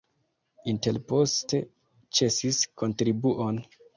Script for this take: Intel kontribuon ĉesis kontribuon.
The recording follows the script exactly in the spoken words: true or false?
false